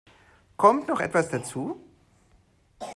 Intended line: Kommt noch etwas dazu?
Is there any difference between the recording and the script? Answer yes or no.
no